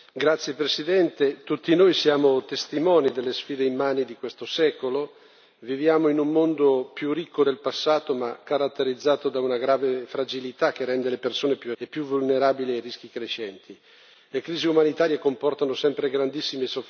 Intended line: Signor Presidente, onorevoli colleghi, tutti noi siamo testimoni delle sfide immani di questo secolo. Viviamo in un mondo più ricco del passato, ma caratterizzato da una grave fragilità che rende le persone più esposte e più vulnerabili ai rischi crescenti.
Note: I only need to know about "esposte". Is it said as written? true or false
false